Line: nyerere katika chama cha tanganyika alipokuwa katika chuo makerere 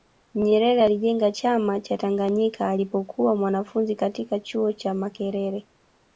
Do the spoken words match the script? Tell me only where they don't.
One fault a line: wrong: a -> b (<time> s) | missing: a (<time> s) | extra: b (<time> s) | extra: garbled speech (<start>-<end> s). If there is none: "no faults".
wrong: katika -> alijenga (0.8 s)
extra: mwanafunzi (3.3 s)
extra: cha (4.7 s)